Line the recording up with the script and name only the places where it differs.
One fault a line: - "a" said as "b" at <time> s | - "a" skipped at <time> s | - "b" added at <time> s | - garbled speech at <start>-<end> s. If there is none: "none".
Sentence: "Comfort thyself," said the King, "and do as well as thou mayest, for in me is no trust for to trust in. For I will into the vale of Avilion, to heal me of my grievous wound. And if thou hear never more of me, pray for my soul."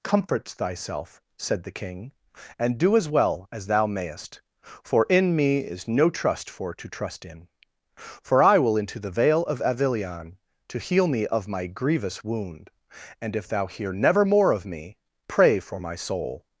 none